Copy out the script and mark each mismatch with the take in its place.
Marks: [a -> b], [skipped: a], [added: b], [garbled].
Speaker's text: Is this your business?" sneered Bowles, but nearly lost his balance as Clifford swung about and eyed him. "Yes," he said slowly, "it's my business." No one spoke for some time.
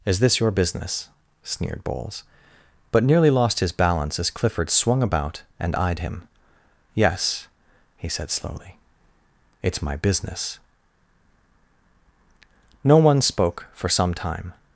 Is this your business?" sneered Bowles, but nearly lost his balance as Clifford swung about and eyed him. "Yes," he said slowly, "it's my business." No one spoke for some time.